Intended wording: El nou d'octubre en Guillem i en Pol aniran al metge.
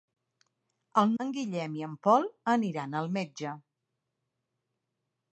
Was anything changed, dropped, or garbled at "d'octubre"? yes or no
yes